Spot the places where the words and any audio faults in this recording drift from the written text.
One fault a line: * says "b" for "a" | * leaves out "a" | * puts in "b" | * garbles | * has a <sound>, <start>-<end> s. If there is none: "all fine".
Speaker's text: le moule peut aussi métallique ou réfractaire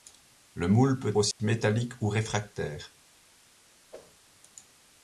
* has a dropout, 1.3-1.4 s
* has a whoosh, 3.9-4.2 s